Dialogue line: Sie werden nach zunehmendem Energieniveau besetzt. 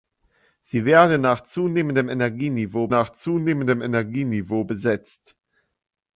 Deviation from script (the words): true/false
true